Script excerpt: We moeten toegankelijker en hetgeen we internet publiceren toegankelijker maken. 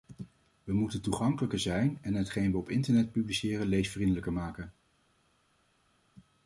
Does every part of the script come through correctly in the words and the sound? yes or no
no